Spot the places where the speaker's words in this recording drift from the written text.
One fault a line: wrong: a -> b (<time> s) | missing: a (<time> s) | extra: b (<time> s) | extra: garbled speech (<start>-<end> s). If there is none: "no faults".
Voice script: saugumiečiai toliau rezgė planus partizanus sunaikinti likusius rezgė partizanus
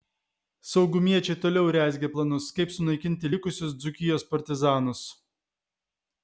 wrong: partizanus -> kaip (2.6 s)
wrong: rezgė -> dzūkijos (3.8 s)